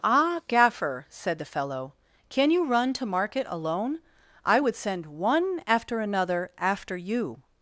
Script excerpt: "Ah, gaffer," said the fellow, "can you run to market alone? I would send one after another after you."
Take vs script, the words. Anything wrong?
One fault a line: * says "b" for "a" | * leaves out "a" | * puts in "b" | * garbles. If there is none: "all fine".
all fine